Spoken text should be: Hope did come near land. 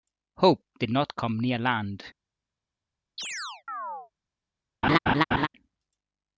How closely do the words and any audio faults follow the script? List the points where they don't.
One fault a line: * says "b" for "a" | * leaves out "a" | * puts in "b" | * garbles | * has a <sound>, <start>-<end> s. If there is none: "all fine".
* puts in "not"
* has a chirp, 3.2-4.1 s
* has a laugh, 4.8-5.5 s